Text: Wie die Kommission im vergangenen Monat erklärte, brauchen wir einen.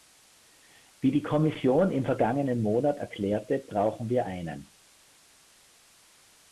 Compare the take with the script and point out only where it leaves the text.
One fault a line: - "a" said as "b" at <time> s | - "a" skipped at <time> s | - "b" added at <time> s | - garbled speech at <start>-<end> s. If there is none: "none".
none